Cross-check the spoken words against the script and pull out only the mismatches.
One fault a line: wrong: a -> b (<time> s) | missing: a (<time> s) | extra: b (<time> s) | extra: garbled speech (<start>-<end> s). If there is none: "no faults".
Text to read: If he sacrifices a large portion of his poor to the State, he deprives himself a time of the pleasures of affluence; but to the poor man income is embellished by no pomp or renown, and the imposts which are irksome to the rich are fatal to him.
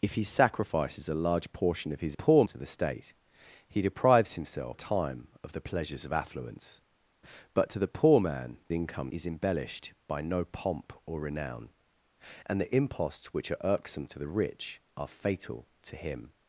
no faults